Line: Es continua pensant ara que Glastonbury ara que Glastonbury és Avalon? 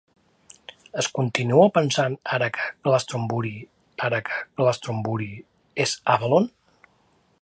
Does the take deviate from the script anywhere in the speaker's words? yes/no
no